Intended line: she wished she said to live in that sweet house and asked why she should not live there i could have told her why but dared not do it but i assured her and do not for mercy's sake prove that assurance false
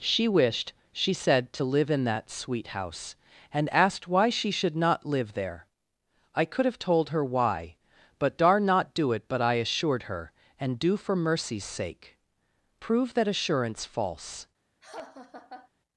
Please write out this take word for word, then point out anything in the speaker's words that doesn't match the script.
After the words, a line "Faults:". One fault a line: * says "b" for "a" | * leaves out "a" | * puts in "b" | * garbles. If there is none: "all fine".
she wished she said to live in that sweet house and asked why she should not live there i could have told her why but dar not do it but i assured her and do for mercy's sake prove that assurance false
Faults:
* says "dar" for "dared"
* leaves out "not"